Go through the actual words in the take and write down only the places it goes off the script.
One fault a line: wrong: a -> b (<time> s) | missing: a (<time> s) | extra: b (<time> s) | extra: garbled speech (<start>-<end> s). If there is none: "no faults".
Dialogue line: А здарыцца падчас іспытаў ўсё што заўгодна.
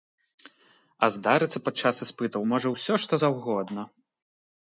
extra: можа (2.5 s)